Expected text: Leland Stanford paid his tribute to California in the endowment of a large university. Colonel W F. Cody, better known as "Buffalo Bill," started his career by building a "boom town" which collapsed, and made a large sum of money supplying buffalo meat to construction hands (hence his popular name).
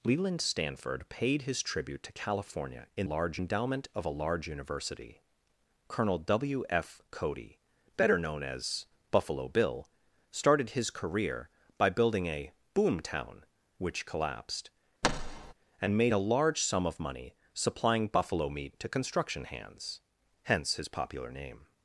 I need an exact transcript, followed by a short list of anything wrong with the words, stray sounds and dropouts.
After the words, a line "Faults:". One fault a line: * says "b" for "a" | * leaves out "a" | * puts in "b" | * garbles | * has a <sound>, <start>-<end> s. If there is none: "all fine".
Leland Stanford paid his tribute to California in large endowment of a large university. Colonel W F. Cody, better known as "Buffalo Bill," started his career by building a "boom town" which collapsed, and made a large sum of money supplying buffalo meat to construction hands (hence his popular name).
Faults:
* says "large" for "the"
* has a thud, 15.0-15.5 s